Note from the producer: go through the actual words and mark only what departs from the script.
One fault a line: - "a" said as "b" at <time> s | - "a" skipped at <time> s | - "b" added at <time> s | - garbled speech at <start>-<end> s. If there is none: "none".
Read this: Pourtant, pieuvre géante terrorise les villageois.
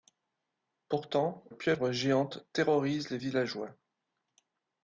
none